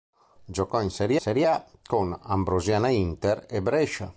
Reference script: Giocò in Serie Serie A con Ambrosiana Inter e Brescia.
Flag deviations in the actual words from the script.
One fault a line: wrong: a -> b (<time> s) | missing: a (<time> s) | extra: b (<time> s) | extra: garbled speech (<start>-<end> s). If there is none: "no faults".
no faults